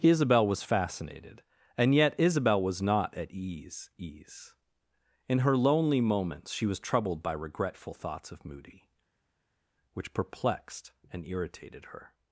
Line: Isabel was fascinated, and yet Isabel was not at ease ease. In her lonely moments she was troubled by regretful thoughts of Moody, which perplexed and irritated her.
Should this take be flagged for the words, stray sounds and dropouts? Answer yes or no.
no